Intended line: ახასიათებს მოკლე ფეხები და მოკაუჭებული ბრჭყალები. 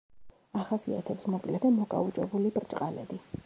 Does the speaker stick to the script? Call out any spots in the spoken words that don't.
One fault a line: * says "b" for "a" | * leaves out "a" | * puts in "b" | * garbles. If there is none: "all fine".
* leaves out "ფეხები"